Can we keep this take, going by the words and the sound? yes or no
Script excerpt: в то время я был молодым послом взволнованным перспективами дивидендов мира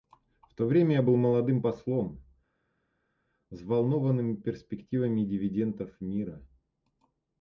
yes